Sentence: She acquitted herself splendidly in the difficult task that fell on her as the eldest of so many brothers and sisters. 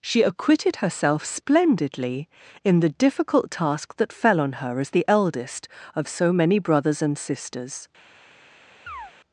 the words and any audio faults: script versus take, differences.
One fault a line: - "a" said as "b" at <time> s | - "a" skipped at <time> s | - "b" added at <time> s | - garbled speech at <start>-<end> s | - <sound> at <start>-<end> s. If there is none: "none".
- chirp at 8.9-9.1 s